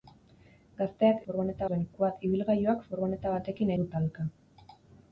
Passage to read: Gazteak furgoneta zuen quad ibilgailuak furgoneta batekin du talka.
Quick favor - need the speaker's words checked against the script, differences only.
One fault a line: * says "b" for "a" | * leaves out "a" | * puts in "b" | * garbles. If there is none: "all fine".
all fine